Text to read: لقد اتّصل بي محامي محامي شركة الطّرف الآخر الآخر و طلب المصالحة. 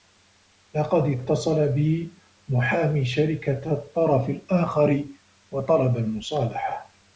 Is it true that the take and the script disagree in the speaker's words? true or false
true